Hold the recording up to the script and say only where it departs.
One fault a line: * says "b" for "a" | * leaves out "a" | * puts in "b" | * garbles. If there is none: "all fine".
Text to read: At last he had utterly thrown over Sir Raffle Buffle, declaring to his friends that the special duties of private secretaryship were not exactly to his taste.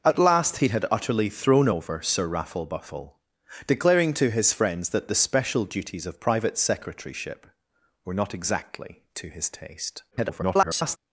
* garbles